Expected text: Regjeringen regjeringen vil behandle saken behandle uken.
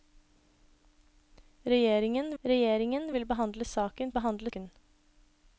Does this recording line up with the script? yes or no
yes